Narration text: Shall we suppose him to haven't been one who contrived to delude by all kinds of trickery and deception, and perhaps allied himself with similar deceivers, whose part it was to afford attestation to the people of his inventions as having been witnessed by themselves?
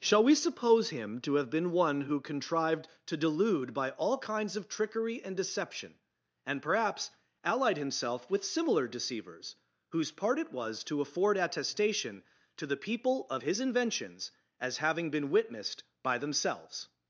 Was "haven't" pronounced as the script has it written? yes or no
no